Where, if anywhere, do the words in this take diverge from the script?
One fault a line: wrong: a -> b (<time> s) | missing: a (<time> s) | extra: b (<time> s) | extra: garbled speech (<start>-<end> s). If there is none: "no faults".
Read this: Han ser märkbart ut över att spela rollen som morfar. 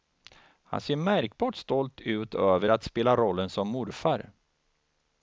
extra: stolt (1.6 s)